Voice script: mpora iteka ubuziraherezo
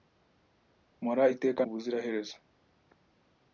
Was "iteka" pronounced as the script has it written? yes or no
yes